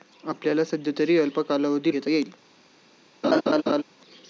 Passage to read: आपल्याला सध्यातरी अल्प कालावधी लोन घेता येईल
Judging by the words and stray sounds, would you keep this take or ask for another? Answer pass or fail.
fail